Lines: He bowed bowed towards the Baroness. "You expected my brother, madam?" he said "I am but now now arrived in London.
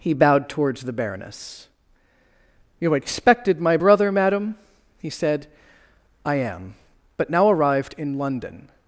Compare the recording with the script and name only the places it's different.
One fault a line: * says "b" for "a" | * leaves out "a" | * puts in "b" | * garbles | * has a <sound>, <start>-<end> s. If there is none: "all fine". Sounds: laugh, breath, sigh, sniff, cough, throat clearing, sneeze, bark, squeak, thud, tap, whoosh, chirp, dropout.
* leaves out "bowed"
* leaves out "now"